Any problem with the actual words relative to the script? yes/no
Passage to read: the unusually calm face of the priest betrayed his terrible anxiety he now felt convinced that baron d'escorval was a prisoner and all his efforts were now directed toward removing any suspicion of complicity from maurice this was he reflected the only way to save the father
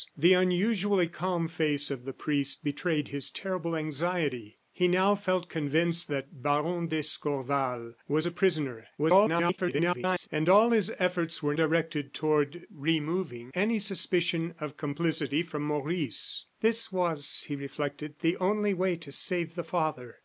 yes